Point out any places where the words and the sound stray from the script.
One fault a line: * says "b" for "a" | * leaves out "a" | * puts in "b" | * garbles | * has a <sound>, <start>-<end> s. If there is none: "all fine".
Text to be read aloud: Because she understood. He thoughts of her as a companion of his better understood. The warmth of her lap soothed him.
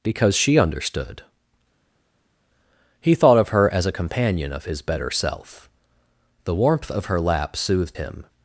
* says "thought" for "thoughts"
* says "self" for "understood"